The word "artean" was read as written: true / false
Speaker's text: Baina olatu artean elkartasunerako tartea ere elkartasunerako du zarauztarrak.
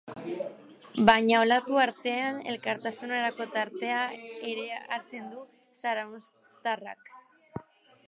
true